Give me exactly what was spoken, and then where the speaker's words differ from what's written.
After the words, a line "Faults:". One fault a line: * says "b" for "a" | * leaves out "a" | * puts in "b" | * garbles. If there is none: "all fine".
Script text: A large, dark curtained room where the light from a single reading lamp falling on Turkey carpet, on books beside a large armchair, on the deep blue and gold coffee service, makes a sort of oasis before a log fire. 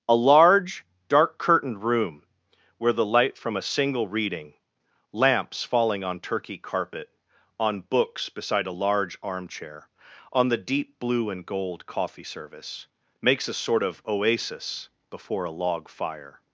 A large, dark curtained room where the light from a single reading lamps falling on Turkey carpet, on books beside a large armchair, on the deep blue and gold coffee service, makes a sort of oasis before a log fire.
Faults:
* says "lamps" for "lamp"